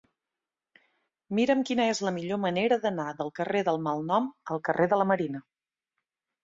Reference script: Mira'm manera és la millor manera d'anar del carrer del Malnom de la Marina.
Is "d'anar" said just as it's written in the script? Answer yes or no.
yes